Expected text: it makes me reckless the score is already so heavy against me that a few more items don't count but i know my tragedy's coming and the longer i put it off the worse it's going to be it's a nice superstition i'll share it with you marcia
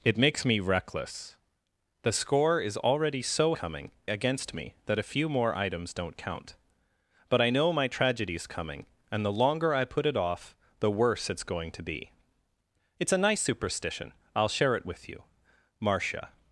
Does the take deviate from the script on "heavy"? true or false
true